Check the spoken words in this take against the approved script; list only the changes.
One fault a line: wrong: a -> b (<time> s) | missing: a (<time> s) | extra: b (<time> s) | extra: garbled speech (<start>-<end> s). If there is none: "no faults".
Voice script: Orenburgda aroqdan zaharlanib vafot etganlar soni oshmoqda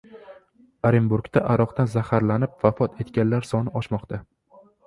no faults